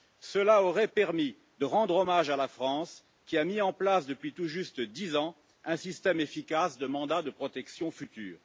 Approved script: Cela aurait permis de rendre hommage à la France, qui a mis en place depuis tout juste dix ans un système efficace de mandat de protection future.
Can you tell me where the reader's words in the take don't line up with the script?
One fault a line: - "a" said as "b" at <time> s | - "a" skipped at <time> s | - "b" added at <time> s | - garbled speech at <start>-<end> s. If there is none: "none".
none